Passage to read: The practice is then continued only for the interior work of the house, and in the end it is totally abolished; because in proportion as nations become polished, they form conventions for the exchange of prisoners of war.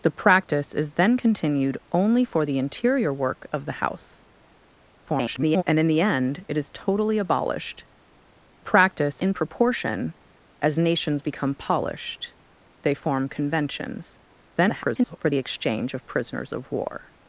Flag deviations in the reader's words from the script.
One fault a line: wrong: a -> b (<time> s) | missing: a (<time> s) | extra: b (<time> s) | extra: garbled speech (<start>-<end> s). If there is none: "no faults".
extra: garbled speech (5.1-5.6 s)
wrong: because -> practice (8.6 s)
extra: garbled speech (14.6-15.2 s)